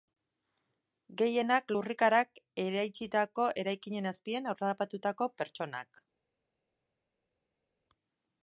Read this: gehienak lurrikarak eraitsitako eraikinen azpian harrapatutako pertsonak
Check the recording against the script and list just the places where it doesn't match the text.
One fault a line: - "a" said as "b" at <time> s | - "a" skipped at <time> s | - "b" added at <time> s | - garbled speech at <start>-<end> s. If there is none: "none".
none